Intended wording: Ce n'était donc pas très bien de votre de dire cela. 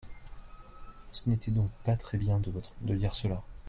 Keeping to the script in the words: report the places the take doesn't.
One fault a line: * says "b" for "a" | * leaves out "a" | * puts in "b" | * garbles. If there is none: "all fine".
all fine